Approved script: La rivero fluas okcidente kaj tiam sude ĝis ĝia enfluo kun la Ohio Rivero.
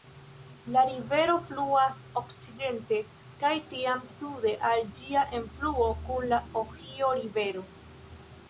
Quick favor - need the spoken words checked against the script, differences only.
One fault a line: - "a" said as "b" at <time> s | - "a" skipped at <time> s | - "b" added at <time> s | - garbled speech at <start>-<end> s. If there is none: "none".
- "ĝis" said as "al" at 4.7 s